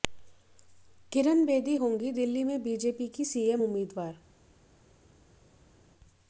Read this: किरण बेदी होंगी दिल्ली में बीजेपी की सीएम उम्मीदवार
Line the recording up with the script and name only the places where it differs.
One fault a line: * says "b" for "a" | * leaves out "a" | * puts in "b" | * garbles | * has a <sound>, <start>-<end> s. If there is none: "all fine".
all fine